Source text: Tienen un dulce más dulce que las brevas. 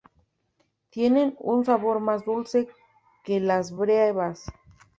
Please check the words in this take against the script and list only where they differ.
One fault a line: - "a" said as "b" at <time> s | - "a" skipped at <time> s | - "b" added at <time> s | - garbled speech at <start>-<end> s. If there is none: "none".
- "dulce" said as "sabor" at 1.6 s